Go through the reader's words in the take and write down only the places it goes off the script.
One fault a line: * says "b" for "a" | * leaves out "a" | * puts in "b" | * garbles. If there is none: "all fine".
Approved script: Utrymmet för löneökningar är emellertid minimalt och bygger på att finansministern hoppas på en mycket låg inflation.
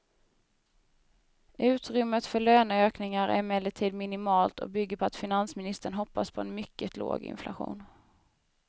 all fine